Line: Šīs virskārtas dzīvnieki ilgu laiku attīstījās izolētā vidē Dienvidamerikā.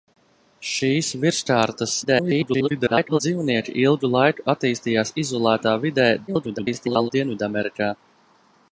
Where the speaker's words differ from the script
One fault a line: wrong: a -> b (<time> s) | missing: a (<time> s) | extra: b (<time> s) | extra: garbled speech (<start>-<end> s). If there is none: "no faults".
extra: garbled speech (2.0-3.2 s)
extra: garbled speech (6.3-7.1 s)